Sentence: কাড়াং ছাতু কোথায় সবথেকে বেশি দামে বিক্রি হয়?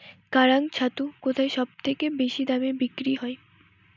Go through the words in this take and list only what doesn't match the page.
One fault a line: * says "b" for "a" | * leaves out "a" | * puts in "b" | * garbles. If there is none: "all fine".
all fine